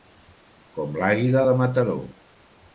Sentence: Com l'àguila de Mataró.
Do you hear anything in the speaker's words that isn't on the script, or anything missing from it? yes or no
no